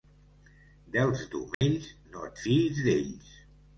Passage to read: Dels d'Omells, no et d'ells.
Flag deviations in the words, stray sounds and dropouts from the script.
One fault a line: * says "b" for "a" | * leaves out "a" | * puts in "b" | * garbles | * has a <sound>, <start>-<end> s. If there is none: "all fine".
* has a dropout, 1.5-1.6 s
* puts in "fiïs"